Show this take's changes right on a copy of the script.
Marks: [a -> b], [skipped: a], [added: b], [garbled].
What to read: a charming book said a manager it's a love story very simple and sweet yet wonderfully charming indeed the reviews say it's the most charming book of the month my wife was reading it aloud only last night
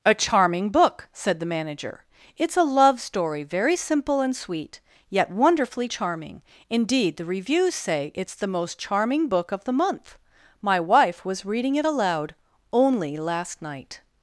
a charming book said [a -> the] manager it's a love story very simple and sweet yet wonderfully charming indeed the reviews say it's the most charming book of the month my wife was reading it aloud only last night